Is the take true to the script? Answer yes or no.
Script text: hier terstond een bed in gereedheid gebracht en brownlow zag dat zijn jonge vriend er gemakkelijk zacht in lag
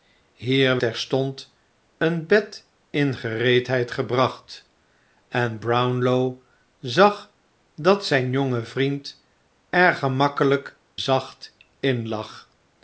yes